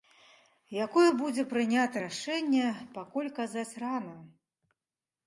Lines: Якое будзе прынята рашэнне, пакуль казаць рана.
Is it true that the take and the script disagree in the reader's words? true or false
false